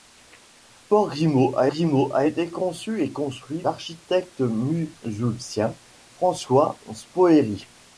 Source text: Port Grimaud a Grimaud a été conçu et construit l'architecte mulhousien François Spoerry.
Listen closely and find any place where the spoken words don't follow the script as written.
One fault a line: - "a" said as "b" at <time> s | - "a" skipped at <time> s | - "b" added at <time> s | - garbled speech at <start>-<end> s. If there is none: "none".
none